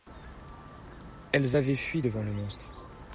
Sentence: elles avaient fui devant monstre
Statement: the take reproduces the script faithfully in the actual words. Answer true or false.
false